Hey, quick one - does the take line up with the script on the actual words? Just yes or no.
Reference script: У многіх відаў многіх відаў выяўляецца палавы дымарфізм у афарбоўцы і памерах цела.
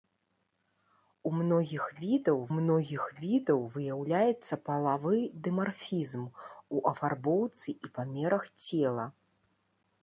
yes